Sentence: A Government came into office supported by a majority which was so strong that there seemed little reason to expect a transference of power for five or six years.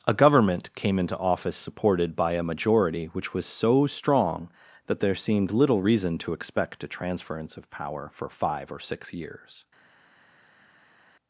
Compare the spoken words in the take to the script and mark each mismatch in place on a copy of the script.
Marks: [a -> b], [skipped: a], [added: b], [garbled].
A Government came into office supported by a majority which was so strong that there seemed little reason to expect a transference of power for five or six years.